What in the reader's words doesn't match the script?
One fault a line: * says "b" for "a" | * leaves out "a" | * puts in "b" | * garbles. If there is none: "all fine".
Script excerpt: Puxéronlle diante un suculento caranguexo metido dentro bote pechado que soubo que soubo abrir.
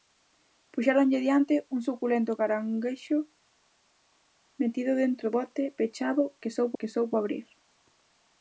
all fine